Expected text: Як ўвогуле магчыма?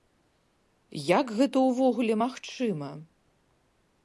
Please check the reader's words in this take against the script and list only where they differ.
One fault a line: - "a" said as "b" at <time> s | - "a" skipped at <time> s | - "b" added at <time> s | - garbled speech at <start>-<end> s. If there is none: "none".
- "гэта" added at 1.4 s